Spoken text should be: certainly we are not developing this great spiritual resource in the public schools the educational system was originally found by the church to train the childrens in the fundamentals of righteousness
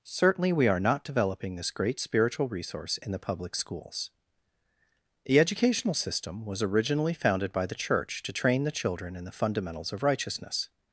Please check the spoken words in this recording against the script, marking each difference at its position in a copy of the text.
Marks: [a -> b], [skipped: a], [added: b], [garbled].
certainly we are not developing this great spiritual resource in the public schools the educational system was originally [found -> founded] by the church to train the [childrens -> children] in the fundamentals of righteousness